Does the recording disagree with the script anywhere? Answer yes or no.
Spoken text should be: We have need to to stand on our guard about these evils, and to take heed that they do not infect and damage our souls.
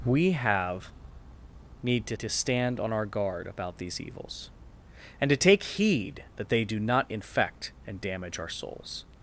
no